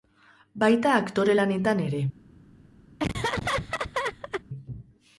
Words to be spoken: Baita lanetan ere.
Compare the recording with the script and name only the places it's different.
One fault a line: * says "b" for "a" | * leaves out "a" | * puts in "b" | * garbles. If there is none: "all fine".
* puts in "aktore"